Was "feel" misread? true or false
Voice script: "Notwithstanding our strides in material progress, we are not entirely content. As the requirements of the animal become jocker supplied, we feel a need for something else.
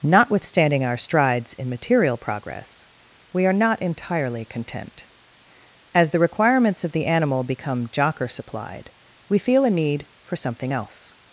false